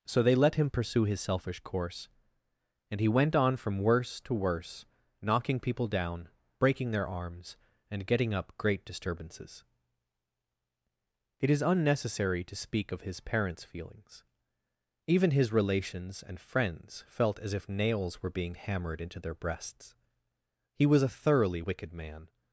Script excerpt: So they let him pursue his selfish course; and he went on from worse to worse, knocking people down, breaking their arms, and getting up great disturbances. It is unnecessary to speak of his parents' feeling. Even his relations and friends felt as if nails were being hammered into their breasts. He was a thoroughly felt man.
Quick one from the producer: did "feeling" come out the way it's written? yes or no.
no